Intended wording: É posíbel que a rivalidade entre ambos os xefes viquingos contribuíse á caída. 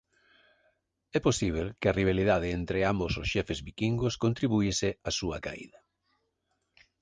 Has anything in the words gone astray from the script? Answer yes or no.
yes